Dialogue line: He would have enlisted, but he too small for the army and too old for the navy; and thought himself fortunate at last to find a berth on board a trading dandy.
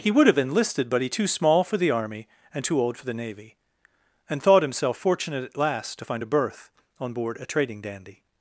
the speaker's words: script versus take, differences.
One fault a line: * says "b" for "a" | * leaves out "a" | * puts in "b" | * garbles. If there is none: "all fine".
all fine